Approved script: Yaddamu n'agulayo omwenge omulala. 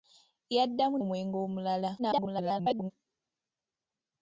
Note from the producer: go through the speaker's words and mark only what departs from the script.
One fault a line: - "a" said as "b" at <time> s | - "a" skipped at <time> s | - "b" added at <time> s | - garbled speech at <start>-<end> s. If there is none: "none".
- "n'agulayo" skipped at 1.0 s
- garbled speech at 2.0-2.9 s